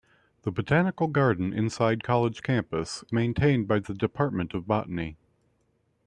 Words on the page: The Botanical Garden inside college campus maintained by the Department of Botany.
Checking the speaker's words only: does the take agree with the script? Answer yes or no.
yes